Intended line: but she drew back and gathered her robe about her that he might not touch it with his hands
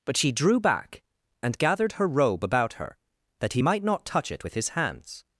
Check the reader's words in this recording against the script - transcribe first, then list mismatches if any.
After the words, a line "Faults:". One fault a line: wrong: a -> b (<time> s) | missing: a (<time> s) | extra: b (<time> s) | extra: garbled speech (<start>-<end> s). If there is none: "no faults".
but she drew back and gathered her robe about her that he might not touch it with his hands
Faults:
no faults